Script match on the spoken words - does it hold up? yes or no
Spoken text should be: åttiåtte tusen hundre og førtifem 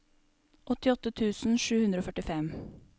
no